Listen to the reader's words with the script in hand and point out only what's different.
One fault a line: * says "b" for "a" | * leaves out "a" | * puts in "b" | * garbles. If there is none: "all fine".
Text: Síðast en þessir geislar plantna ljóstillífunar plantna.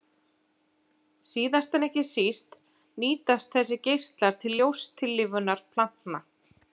* puts in "ekki síst nýtast"
* says "til" for "plantna"